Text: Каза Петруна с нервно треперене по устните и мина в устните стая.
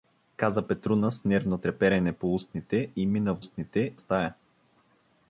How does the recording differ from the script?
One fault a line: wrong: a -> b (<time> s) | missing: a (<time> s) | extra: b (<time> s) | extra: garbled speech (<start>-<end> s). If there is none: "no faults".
no faults